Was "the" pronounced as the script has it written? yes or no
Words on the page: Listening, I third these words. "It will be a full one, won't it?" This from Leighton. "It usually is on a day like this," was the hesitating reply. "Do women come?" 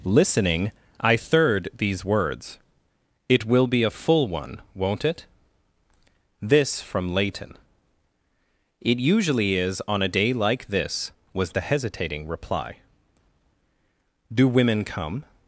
yes